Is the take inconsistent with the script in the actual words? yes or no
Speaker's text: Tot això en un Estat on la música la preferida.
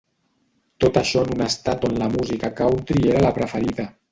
yes